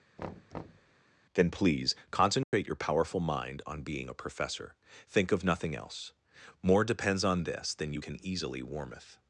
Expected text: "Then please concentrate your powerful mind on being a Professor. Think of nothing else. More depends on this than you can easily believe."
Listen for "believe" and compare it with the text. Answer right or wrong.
wrong